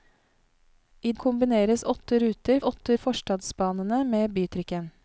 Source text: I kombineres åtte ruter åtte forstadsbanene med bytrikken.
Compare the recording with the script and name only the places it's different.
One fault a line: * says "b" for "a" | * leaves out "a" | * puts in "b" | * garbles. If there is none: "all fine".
all fine